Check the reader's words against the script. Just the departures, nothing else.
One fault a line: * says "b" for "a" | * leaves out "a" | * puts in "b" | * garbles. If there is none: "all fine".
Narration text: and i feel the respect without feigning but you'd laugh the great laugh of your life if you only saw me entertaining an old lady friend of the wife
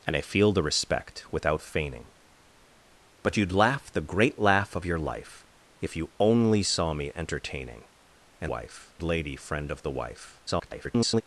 * says "wife" for "old"
* garbles